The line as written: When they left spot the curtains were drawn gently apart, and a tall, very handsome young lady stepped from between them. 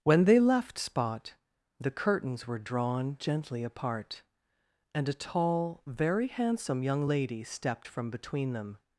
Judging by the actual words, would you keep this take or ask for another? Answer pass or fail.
pass